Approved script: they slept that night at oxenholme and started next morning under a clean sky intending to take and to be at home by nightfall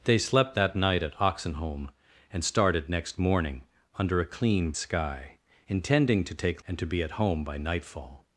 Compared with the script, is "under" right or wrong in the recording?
right